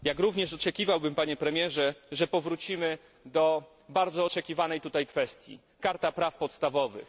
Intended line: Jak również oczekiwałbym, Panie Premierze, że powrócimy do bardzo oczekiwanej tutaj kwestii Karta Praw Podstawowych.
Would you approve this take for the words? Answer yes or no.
yes